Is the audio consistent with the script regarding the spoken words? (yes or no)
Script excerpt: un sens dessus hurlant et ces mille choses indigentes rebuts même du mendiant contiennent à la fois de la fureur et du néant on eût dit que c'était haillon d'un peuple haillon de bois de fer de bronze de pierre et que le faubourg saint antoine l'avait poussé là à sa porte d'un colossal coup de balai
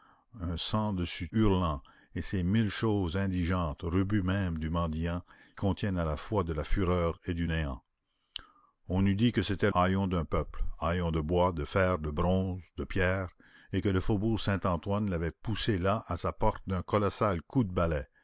yes